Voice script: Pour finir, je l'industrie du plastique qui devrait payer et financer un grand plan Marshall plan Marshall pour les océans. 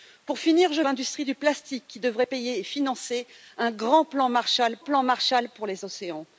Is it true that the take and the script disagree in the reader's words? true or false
false